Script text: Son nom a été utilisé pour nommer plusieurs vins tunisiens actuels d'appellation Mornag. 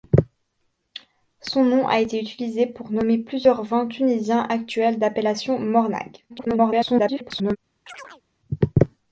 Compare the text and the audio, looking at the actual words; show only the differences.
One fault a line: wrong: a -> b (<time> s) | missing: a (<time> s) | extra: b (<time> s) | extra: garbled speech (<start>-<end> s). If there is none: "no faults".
extra: garbled speech (6.3-7.6 s)